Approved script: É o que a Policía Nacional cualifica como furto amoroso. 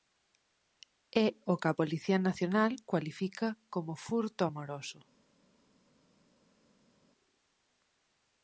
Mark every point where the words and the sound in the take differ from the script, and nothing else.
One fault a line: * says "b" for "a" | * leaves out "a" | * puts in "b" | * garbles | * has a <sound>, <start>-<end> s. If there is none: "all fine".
all fine